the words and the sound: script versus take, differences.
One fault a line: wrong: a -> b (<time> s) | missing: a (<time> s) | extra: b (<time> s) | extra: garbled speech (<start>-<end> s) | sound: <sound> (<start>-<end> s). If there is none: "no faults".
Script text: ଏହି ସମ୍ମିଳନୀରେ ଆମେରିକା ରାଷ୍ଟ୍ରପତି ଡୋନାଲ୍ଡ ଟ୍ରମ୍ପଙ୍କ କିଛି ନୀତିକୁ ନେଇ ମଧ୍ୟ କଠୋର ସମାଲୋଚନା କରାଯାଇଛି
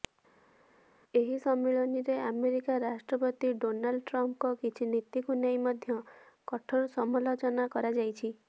no faults